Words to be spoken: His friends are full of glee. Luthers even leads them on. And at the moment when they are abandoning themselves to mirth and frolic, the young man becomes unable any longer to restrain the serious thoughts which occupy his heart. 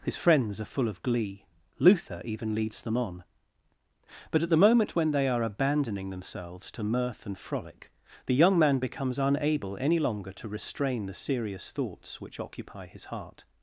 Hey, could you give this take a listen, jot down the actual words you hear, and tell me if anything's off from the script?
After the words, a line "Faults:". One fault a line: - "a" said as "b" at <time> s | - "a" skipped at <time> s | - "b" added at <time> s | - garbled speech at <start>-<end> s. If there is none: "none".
His friends are full of glee. Luther even leads them on. But at the moment when they are abandoning themselves to mirth and frolic, the young man becomes unable any longer to restrain the serious thoughts which occupy his heart.
Faults:
- "Luthers" said as "Luther" at 1.8 s
- "And" said as "But" at 4.3 s